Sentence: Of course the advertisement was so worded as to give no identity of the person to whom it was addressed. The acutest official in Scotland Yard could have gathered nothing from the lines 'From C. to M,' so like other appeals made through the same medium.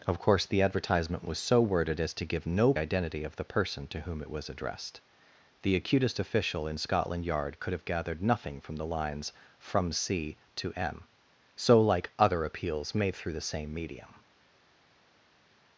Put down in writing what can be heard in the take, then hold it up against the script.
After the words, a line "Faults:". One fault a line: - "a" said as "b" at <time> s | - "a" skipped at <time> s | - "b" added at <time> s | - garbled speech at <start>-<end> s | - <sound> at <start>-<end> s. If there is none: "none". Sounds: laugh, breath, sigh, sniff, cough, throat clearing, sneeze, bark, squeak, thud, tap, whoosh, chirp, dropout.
Of course the advertisement was so worded as to give no identity of the person to whom it was addressed. The acutest official in Scotland Yard could have gathered nothing from the lines 'From C. to M,' so like other appeals made through the same medium.
Faults:
none